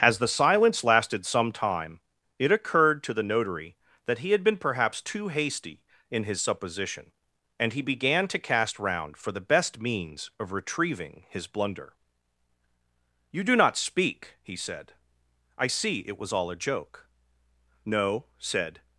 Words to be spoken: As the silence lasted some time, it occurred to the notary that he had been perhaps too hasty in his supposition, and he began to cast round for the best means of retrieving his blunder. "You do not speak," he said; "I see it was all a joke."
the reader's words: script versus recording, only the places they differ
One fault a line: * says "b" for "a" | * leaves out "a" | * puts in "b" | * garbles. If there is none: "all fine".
* puts in "No said"